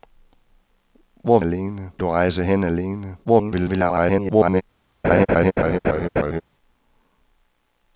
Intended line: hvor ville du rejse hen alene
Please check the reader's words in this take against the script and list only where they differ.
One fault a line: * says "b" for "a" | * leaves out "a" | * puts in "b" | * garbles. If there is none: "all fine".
* says "alene" for "ville"
* garbles